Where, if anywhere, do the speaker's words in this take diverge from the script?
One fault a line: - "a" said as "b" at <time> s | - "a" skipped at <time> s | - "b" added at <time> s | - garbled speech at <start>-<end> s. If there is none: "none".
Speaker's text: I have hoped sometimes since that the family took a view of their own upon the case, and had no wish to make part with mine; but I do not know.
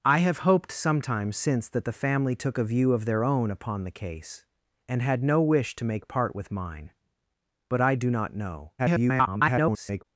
- garbled speech at 8.8-10.0 s